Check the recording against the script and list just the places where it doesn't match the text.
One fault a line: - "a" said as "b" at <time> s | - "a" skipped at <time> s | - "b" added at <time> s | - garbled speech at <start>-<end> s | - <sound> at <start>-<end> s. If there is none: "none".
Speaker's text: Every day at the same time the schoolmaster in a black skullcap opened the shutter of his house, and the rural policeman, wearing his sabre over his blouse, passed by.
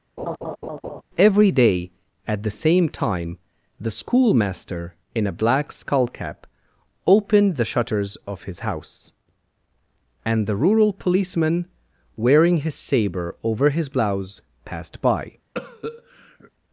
- laugh at 0.2-1.0 s
- "shutter" said as "shutters" at 7.7 s
- cough at 15.5-16.5 s